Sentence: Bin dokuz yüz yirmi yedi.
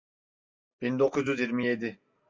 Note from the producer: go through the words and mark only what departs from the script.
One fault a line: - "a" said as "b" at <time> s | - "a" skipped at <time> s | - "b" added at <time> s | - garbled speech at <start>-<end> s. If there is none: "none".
none